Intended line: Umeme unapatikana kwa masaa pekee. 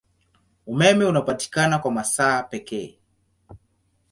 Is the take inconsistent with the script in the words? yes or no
no